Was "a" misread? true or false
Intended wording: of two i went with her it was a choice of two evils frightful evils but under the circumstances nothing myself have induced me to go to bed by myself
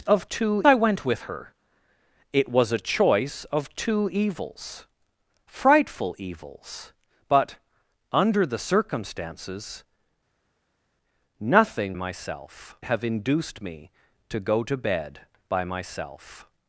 false